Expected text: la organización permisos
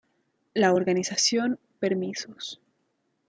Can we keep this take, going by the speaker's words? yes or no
yes